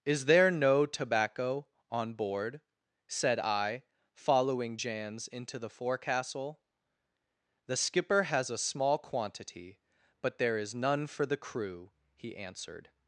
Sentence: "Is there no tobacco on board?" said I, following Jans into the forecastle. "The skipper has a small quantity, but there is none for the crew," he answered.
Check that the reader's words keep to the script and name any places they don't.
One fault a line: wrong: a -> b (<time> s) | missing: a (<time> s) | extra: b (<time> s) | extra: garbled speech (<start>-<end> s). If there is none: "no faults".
no faults